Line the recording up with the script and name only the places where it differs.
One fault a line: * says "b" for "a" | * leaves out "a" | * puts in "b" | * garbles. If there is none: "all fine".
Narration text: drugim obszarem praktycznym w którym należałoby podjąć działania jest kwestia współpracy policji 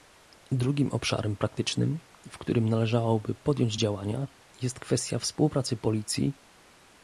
all fine